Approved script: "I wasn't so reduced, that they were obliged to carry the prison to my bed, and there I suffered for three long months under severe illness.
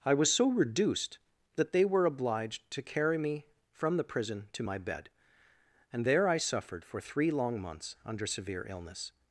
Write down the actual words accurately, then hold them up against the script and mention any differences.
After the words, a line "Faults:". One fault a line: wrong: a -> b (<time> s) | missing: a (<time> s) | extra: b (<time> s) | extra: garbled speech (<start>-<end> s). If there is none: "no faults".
"I was so reduced, that they were obliged to carry me from the prison to my bed, and there I suffered for three long months under severe illness.
Faults:
wrong: wasn't -> was (0.1 s)
extra: me from (3.2 s)